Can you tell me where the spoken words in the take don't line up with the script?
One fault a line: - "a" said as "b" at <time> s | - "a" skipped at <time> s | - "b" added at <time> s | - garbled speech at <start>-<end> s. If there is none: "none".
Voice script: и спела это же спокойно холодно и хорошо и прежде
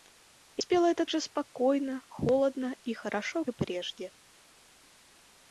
none